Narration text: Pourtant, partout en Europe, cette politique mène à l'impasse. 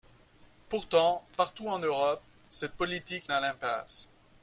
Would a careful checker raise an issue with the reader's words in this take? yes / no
yes